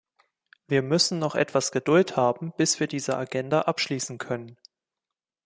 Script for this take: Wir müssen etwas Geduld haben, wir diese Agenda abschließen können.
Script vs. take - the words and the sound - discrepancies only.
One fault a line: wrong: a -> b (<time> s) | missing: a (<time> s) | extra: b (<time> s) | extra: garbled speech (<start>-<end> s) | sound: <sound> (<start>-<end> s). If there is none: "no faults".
extra: noch (1.2 s)
extra: bis (2.6 s)